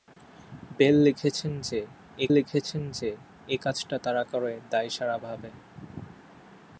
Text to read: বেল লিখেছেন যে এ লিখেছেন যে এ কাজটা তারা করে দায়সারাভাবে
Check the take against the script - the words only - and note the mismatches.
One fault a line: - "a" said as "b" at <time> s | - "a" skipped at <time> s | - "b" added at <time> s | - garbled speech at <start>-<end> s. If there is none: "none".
none